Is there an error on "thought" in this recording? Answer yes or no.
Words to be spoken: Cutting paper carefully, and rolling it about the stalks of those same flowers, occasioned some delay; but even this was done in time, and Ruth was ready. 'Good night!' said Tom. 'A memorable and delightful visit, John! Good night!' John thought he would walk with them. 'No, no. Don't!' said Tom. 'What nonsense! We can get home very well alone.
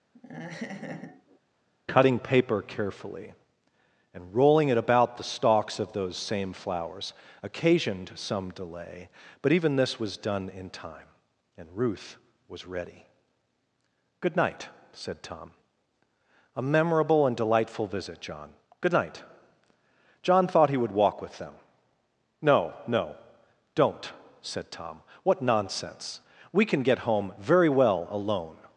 no